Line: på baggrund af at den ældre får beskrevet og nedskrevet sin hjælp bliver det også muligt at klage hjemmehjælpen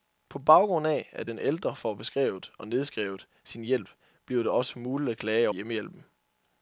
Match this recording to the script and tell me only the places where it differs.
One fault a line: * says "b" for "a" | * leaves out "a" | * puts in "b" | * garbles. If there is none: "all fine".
all fine